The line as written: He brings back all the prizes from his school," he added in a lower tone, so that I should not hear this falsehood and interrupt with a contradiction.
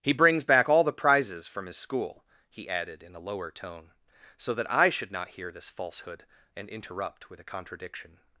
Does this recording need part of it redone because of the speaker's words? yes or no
no